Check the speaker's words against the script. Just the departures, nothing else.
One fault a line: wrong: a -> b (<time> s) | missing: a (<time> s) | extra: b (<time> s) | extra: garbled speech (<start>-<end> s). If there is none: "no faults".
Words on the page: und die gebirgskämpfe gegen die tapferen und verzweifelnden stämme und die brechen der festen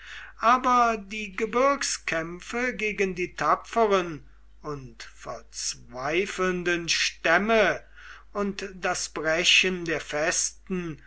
wrong: und -> aber (0.4 s)
wrong: die -> das (8.8 s)